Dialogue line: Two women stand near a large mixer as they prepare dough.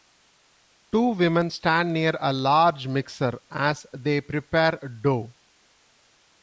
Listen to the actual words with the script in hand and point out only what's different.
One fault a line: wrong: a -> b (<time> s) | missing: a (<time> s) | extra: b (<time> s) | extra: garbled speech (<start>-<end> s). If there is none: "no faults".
no faults